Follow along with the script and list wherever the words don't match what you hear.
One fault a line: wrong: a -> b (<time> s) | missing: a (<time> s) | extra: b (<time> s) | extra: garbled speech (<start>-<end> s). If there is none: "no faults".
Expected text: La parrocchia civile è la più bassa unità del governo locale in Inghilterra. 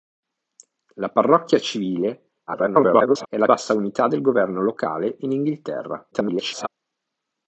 extra: garbled speech (2.5-3.3 s)
missing: più (3.5 s)
extra: garbled speech (6.1-6.7 s)